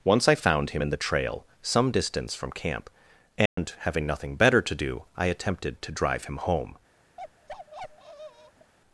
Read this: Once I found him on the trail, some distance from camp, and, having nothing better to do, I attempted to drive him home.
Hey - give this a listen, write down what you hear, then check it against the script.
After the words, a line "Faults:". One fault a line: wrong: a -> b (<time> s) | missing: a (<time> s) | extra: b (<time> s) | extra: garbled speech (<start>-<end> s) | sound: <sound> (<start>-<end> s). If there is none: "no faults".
Once I found him in the trail, some distance from camp, and, having nothing better to do, I attempted to drive him home.
Faults:
wrong: on -> in (0.8 s)
sound: dropout (3.5-3.6 s)
sound: bark (7.2-8.7 s)